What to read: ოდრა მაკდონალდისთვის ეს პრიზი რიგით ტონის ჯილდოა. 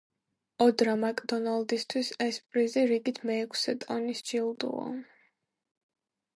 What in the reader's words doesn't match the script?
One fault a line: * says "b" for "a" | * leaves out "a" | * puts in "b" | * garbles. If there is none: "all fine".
* puts in "მეექვსე"